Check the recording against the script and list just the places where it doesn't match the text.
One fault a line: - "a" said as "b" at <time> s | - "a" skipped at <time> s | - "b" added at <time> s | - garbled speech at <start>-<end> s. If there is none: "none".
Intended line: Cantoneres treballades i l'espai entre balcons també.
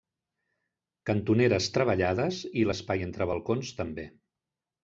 none